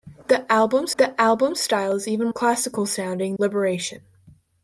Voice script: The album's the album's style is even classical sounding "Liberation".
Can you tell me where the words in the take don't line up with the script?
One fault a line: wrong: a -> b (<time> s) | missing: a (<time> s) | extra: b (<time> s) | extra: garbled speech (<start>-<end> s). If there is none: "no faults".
no faults